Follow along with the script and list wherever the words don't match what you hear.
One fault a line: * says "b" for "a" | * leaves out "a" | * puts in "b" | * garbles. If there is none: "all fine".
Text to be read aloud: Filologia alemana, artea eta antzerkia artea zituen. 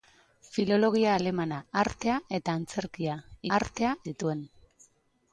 all fine